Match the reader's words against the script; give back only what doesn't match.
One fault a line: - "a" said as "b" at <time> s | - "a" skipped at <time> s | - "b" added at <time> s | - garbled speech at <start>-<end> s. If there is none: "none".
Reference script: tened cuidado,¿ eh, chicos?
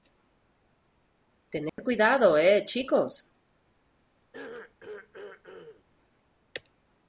none